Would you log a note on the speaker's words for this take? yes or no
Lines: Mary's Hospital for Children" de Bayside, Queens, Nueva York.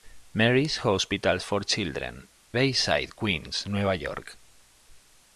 yes